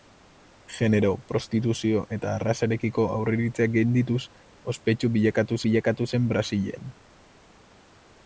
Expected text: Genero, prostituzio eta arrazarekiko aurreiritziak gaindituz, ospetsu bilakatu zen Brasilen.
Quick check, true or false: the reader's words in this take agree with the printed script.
false